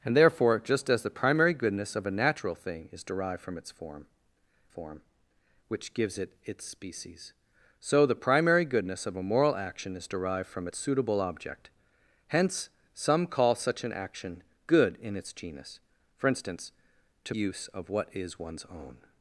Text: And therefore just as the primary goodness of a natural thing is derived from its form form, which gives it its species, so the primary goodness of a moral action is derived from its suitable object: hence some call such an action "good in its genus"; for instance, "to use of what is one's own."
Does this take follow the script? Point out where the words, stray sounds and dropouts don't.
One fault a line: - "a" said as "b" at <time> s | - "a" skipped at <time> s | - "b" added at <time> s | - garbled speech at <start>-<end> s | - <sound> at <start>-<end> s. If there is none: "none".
none